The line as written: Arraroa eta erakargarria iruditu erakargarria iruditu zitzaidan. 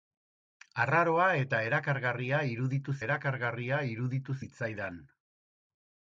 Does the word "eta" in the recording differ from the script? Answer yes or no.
no